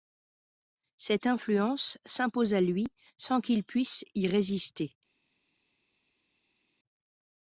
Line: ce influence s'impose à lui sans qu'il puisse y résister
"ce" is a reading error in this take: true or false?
true